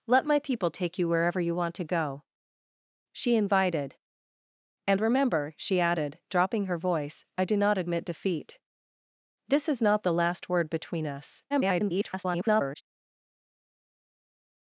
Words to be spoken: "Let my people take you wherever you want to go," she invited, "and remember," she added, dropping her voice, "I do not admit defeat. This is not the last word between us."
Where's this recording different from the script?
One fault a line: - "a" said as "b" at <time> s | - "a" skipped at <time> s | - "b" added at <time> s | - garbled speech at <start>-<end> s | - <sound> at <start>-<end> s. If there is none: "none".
- garbled speech at 11.5-12.8 s